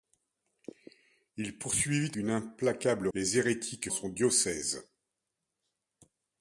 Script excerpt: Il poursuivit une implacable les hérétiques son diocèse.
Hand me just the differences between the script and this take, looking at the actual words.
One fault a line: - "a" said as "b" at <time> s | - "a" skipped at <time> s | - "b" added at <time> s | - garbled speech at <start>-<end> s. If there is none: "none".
none